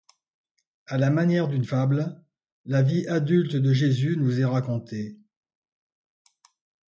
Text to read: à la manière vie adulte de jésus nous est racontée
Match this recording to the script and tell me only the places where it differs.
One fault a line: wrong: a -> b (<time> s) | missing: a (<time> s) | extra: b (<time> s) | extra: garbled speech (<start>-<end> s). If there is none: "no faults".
extra: d'une fable la (1.5 s)